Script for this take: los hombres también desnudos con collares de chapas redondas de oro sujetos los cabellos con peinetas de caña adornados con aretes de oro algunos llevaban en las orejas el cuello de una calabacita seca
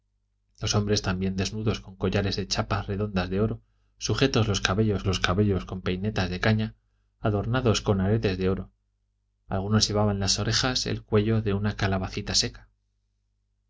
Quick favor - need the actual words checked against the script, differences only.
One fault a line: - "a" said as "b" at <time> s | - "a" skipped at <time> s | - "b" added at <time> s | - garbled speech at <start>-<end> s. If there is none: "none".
- "los cabellos" added at 5.1 s